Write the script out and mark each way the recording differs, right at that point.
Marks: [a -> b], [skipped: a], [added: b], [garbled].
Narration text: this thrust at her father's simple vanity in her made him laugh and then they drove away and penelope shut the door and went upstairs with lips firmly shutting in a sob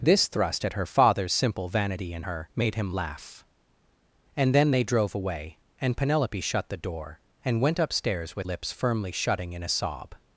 this thrust at her father's simple vanity in her made him laugh and then they drove away and penelope shut the door and went upstairs with lips firmly shutting in a sob